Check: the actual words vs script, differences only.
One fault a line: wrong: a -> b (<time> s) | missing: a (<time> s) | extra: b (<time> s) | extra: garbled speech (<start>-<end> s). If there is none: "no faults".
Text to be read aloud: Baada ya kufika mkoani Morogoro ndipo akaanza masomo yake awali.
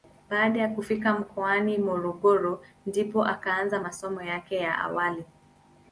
extra: ya (4.5 s)